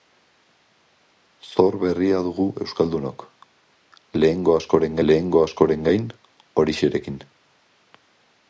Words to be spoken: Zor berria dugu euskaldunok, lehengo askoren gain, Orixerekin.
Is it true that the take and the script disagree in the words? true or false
true